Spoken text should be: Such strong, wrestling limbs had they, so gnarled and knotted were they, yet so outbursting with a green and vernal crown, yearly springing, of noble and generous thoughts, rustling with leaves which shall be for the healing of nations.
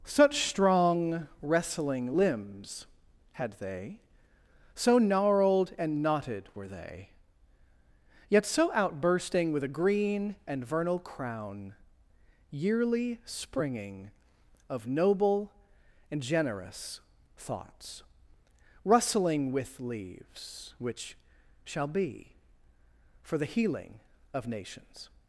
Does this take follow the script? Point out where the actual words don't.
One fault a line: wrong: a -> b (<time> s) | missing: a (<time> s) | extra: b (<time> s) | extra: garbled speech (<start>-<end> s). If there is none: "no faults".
no faults